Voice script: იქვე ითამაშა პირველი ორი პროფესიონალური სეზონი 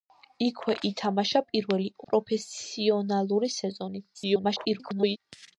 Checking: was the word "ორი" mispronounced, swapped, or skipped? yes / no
yes